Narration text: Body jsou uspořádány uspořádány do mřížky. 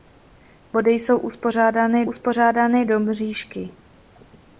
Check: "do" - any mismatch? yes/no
no